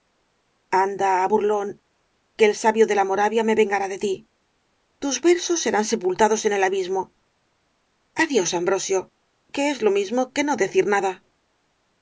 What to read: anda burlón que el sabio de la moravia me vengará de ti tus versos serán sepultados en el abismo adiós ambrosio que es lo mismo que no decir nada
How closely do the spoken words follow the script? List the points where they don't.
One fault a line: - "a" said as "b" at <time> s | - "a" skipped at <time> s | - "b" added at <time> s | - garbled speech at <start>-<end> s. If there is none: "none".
none